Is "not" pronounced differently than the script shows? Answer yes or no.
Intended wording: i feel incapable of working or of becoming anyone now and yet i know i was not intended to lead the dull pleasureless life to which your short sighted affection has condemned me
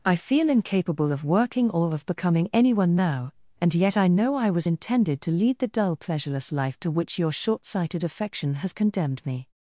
yes